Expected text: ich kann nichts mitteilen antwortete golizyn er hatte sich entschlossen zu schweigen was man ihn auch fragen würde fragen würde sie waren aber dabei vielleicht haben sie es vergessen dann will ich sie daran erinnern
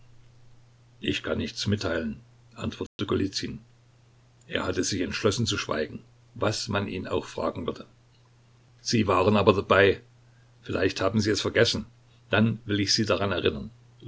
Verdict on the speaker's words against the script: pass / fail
fail